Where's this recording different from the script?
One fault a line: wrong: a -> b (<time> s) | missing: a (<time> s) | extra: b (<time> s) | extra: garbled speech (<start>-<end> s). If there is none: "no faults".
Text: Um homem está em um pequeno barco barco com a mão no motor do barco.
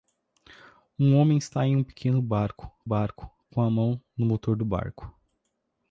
no faults